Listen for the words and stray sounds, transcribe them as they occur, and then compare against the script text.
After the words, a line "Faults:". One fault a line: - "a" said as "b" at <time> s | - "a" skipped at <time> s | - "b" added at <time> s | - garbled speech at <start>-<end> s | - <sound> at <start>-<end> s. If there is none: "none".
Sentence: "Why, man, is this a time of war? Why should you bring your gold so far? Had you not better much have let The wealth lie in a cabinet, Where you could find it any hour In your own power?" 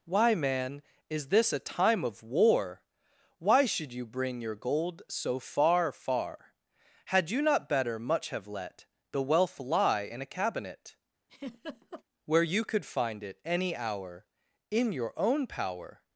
"Why, man, is this a time of war? Why should you bring your gold so far far? Had you not better much have let The wealth lie in a cabinet, Where you could find it any hour In your own power?"
Faults:
- "far" added at 5.9 s
- laugh at 11.3-12.0 s